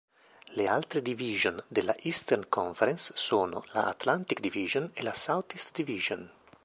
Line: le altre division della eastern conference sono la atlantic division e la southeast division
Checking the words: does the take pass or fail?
pass